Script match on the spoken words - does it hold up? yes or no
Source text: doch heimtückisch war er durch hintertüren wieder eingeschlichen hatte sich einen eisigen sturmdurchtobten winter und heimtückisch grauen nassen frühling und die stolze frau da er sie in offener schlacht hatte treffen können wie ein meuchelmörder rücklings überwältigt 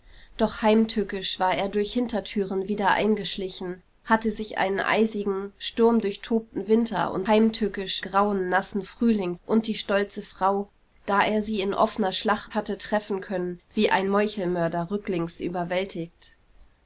yes